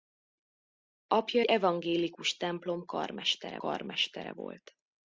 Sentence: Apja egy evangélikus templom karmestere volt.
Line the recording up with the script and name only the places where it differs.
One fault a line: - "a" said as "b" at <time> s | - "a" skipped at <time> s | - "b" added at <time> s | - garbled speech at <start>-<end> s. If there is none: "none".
- "egy" skipped at 1.4 s
- "karmestere" added at 3.6 s